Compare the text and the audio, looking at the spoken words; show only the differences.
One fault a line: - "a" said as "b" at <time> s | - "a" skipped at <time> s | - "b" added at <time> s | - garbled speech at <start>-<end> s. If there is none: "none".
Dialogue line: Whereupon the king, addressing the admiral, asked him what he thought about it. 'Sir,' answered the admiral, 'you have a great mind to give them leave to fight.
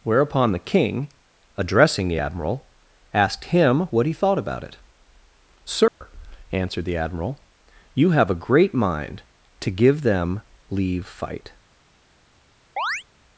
- "to" skipped at 11.1 s